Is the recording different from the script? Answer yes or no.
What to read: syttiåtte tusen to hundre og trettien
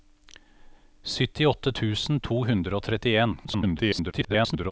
yes